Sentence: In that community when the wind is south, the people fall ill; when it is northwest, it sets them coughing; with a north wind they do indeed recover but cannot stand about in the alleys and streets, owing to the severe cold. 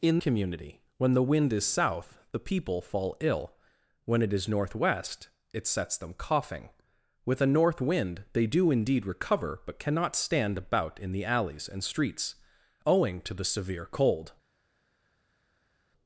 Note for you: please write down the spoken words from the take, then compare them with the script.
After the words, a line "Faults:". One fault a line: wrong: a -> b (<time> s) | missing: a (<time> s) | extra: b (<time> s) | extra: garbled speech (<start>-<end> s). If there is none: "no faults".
In community when the wind is south, the people fall ill; when it is northwest, it sets them coughing; with a north wind they do indeed recover but cannot stand about in the alleys and streets, owing to the severe cold.
Faults:
missing: that (0.2 s)